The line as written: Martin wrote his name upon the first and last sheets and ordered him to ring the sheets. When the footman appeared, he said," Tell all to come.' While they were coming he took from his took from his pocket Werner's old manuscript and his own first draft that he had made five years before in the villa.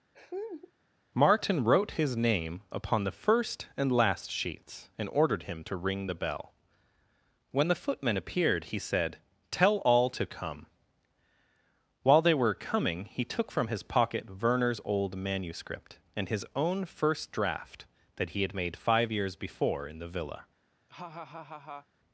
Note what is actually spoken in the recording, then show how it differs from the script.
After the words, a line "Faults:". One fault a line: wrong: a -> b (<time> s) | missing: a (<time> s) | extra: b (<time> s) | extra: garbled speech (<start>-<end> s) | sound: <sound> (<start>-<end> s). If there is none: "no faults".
Martin wrote his name upon the first and last sheets and ordered him to ring the bell. When the footman appeared, he said," Tell all to come.' While they were coming he took from his pocket Werner's old manuscript and his own first draft that he had made five years before in the villa.
Faults:
sound: laugh (0.1-0.7 s)
wrong: sheets -> bell (6.1 s)
missing: took from his (13.8 s)
sound: laugh (20.9-21.9 s)